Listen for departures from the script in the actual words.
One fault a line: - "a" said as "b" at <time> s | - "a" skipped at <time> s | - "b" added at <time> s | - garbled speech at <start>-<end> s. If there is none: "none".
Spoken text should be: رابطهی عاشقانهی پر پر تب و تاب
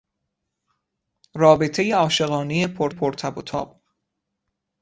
none